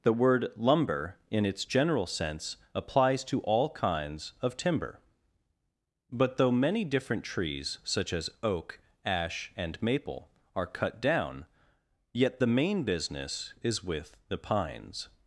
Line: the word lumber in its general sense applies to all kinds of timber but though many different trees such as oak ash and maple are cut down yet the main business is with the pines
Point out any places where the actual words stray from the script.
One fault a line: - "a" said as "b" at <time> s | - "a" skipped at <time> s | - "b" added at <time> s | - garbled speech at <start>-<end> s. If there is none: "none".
none